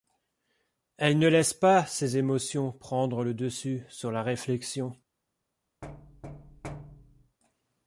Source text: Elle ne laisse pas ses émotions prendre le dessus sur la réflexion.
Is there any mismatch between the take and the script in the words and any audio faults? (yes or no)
yes